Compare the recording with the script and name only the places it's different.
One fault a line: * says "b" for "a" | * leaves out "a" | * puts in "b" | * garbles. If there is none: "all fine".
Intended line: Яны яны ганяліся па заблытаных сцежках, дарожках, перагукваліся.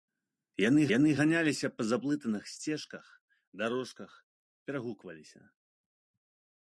all fine